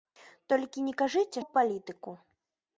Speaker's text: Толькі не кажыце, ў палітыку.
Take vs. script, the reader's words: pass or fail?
pass